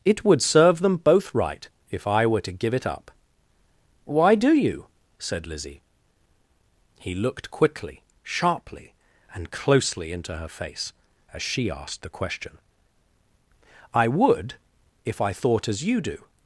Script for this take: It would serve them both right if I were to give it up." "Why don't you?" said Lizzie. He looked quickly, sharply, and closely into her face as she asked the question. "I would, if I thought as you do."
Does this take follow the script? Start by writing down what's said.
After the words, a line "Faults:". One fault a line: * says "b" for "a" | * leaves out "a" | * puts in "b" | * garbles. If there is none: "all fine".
It would serve them both right if I were to give it up." "Why do you?" said Lizzie. He looked quickly, sharply, and closely into her face as she asked the question. "I would, if I thought as you do."
Faults:
* says "do" for "don't"